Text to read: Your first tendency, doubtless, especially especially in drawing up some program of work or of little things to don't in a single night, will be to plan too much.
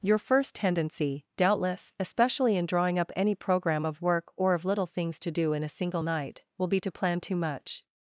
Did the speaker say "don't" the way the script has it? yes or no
no